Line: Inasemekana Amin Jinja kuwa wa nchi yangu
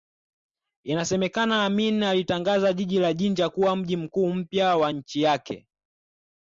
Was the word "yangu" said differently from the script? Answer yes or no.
yes